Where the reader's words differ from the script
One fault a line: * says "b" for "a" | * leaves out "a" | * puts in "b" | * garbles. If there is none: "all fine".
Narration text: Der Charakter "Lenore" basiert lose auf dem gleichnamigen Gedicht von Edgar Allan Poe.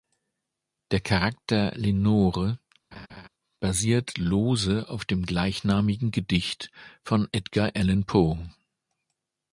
all fine